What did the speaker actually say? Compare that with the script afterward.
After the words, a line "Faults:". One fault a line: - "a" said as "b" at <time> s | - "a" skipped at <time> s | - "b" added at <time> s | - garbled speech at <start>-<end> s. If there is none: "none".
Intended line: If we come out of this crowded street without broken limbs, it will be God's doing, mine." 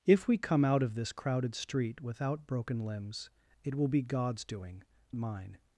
If we come out of this crowded street without broken limbs, it will be God's doing, mine."
Faults:
none